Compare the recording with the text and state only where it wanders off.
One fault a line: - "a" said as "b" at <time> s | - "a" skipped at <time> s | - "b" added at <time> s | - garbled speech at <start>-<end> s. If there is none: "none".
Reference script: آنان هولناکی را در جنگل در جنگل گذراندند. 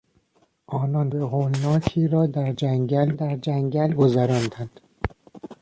none